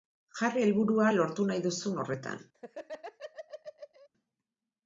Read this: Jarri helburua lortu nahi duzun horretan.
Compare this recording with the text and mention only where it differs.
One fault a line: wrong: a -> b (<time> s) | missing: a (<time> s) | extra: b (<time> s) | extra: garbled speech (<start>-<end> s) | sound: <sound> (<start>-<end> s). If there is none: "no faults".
sound: laugh (2.5-4.1 s)